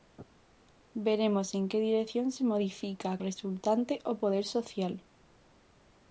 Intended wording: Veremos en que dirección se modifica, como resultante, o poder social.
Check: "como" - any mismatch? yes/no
yes